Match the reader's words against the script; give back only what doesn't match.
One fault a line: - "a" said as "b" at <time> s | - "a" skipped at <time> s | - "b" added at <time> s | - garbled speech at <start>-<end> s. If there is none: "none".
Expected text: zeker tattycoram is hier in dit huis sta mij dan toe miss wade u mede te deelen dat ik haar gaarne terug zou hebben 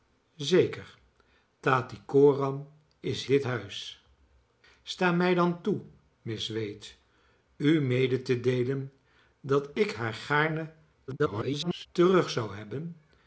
- "hier in" skipped at 3.2 s
- garbled speech at 11.1-11.9 s